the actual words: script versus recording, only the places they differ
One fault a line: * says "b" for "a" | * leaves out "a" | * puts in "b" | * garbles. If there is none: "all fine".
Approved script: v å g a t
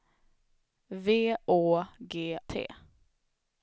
* leaves out "a"